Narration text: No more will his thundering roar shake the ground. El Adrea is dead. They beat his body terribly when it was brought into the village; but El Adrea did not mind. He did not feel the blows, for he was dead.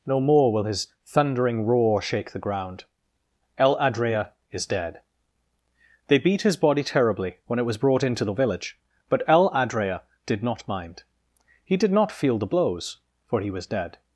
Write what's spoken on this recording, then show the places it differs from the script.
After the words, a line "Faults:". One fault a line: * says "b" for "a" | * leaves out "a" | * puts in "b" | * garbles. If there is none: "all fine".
No more will his thundering roar shake the ground. El Adrea is dead. They beat his body terribly when it was brought into the village; but El Adrea did not mind. He did not feel the blows, for he was dead.
Faults:
all fine